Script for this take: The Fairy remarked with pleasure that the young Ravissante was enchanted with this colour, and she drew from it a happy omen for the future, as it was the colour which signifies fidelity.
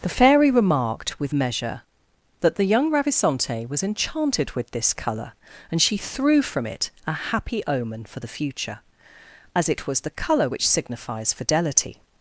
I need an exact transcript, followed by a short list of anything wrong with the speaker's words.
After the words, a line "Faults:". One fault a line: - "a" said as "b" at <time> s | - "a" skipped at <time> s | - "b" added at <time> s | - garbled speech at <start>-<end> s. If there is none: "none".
The Fairy remarked with measure that the young Ravissante was enchanted with this colour, and she threw from it a happy omen for the future, as it was the colour which signifies fidelity.
Faults:
- "pleasure" said as "measure" at 1.3 s
- "drew" said as "threw" at 6.0 s